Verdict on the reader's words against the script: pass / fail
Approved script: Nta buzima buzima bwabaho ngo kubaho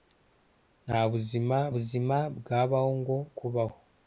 pass